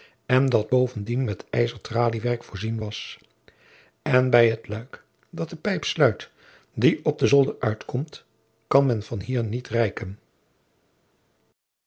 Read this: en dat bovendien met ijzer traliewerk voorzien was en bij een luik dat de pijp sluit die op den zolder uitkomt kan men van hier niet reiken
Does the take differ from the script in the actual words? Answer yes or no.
yes